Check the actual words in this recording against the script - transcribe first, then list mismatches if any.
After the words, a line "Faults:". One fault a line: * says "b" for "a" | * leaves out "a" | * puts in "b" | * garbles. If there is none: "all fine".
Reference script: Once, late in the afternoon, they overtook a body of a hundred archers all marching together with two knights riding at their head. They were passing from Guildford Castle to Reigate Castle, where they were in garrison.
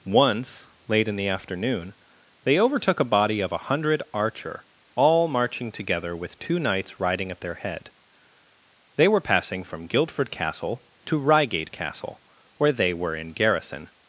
Once, late in the afternoon, they overtook a body of a hundred archer all marching together with two knights riding at their head. They were passing from Guildford Castle to Reigate Castle, where they were in garrison.
Faults:
* says "archer" for "archers"